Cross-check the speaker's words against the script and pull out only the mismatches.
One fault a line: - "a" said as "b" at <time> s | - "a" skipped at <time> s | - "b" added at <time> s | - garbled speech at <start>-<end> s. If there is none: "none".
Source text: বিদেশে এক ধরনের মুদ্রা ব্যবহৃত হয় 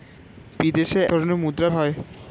- "এক" skipped at 1.0 s
- "ব্যবহৃত" skipped at 1.7 s